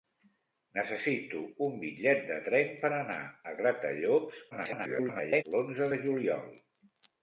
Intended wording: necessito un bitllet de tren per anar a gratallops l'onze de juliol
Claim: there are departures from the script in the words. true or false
true